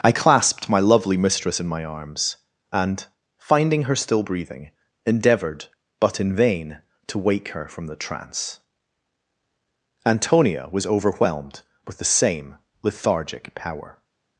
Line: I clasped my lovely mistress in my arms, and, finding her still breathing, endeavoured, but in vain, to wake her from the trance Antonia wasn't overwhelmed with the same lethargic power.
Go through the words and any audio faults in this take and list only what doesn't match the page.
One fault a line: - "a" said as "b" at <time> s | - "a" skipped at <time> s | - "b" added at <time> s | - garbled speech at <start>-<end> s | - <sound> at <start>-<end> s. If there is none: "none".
- "wasn't" said as "was" at 10.7 s